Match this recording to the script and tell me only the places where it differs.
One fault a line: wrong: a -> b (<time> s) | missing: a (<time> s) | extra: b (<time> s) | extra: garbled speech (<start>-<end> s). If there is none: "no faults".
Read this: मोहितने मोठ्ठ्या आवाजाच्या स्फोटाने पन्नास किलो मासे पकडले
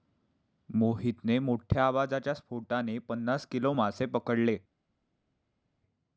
no faults